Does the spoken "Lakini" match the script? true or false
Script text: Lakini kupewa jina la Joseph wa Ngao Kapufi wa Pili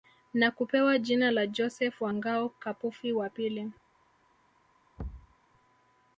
false